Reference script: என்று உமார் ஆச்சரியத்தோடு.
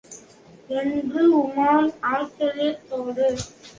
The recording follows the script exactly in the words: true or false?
true